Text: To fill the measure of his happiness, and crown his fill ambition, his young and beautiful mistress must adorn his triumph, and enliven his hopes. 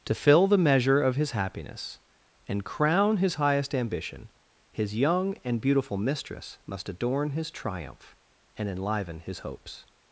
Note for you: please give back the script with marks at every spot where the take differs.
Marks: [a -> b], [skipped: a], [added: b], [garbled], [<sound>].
To fill the measure of his happiness, and crown his [fill -> highest] ambition, his young and beautiful mistress must adorn his triumph, and enliven his hopes.